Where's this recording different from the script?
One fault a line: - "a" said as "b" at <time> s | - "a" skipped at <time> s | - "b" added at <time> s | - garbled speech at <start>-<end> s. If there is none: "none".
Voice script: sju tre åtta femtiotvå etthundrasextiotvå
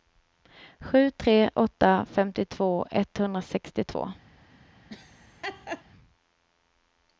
none